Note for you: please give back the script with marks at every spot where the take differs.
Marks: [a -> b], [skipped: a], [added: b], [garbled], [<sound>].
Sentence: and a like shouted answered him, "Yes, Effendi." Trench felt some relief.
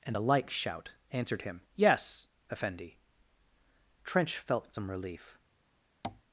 and a like [shouted -> shout] answered him, "Yes, Effendi." Trench felt some relief. [tap]